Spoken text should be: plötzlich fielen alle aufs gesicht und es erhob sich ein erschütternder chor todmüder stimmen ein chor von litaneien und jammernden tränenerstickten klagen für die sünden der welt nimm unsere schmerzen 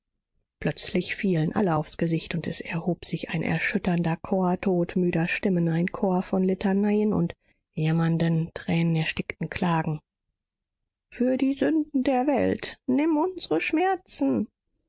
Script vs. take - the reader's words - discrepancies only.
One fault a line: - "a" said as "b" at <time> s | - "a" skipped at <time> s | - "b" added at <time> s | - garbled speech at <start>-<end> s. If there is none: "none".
none